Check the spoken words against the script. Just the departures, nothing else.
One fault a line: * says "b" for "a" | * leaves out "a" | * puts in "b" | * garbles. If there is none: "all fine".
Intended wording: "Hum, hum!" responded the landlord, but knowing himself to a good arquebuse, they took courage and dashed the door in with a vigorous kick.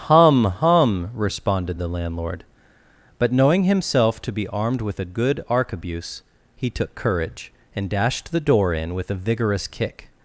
* puts in "be armed with"
* says "he" for "they"